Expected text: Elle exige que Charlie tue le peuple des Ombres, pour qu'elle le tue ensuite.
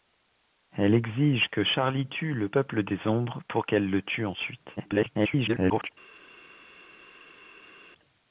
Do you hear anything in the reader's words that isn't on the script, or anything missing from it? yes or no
yes